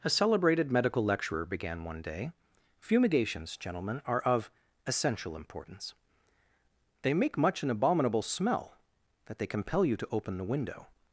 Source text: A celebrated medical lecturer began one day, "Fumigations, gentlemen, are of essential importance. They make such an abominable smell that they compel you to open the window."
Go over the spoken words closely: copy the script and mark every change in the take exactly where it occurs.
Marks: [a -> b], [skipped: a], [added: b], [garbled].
A celebrated medical lecturer began one day, "Fumigations, gentlemen, are of essential importance. They make [such -> much] an abominable smell that they compel you to open the window."